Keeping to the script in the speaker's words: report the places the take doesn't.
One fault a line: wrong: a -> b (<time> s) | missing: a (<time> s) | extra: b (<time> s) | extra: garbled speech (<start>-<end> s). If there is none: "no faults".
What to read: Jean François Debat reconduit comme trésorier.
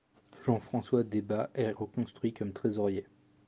extra: est (1.5 s)